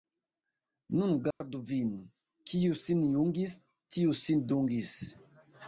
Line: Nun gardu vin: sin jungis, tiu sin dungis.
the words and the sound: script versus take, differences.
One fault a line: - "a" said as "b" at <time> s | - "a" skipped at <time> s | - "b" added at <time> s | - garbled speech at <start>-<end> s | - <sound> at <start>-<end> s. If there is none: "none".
- dropout at 1.3-1.4 s
- "kiu" added at 2.5 s